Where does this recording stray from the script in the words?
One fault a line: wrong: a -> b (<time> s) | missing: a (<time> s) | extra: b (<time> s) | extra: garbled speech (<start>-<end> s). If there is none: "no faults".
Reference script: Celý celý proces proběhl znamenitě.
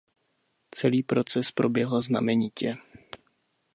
missing: celý (1.0 s)